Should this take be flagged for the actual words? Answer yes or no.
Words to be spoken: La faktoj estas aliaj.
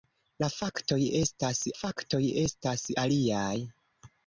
yes